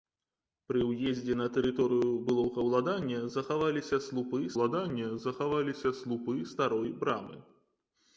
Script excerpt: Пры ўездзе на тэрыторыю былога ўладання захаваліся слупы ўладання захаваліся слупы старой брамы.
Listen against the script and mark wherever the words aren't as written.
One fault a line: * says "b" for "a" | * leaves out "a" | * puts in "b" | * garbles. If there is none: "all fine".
all fine